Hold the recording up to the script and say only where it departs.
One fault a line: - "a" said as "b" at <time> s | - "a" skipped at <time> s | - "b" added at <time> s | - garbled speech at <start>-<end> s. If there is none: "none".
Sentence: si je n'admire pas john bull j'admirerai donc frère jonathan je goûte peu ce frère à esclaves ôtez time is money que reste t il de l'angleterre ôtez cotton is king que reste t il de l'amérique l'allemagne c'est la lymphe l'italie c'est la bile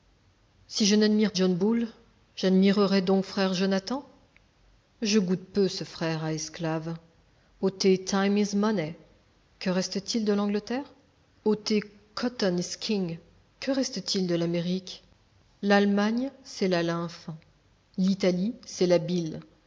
- "pas" skipped at 1.3 s